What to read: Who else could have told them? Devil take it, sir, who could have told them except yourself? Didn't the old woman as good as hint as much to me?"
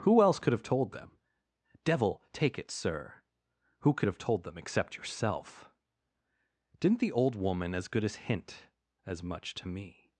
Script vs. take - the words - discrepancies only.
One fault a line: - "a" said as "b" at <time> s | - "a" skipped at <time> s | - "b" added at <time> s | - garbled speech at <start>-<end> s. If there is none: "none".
none